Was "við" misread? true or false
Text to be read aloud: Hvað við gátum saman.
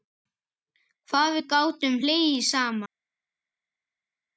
false